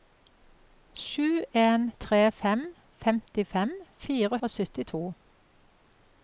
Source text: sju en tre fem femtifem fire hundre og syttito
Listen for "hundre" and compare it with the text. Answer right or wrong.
wrong